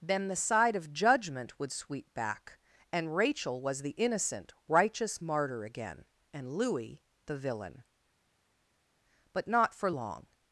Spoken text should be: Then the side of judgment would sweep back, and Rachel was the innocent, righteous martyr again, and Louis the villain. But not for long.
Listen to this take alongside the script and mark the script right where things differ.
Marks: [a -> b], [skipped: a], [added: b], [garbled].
Then the side of judgment would sweep back, and Rachel was the innocent, righteous martyr again, and Louis the villain. But not for long.